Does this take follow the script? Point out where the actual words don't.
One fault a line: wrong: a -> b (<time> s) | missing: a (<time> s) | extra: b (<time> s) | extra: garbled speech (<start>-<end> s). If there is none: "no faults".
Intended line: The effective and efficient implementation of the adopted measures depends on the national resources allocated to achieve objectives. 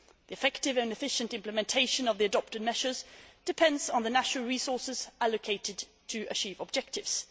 no faults